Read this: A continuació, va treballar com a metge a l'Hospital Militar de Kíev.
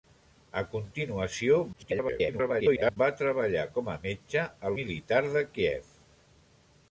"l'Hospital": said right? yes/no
no